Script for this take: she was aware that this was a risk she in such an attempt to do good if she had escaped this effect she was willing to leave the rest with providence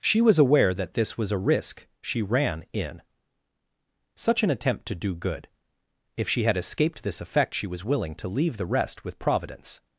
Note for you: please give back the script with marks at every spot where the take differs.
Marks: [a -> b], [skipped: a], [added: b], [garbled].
she was aware that this was a risk she [added: ran] in such an attempt to do good if she had escaped this effect she was willing to leave the rest with providence